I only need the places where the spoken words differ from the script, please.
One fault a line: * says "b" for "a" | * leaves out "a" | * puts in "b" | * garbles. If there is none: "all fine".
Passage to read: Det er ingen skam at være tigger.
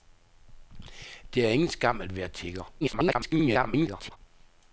* garbles